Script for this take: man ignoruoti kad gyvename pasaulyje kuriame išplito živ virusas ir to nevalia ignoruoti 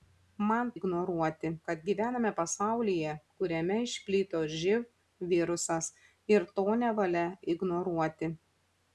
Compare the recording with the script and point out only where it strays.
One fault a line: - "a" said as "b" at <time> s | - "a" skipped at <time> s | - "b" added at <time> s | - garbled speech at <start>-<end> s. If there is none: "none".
none